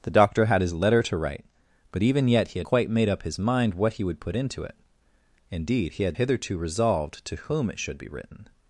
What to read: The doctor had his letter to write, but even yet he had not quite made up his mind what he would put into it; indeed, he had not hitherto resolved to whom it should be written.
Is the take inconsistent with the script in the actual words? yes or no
yes